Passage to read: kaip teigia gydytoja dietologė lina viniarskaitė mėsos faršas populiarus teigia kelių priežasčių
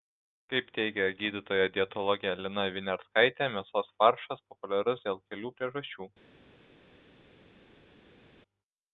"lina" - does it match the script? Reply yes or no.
yes